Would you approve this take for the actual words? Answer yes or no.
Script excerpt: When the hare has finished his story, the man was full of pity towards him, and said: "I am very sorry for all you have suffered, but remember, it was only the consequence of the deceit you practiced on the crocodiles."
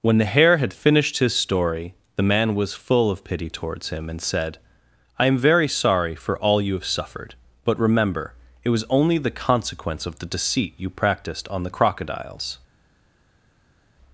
no